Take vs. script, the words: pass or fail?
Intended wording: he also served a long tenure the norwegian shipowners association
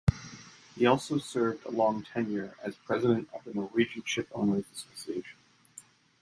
fail